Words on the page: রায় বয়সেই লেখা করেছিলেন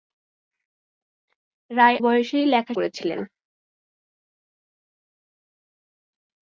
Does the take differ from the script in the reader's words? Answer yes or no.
no